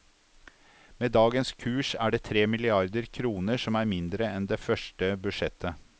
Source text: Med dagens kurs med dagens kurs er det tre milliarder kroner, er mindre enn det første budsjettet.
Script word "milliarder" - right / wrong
right